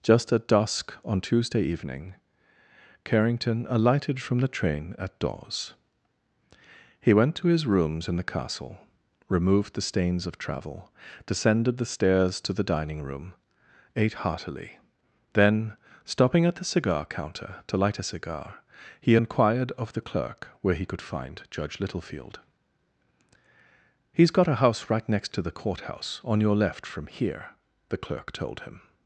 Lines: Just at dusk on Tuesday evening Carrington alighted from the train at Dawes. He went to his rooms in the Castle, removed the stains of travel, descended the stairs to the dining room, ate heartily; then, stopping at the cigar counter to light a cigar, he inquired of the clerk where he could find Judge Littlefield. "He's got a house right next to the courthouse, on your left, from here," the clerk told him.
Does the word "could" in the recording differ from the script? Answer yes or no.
no